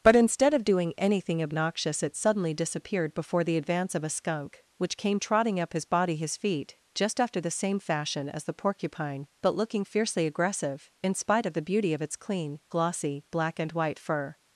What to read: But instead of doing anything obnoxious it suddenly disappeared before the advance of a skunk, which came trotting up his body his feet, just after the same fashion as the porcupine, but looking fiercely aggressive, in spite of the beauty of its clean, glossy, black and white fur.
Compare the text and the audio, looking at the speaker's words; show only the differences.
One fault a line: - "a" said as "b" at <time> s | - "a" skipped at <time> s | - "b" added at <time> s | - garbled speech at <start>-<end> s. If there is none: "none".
none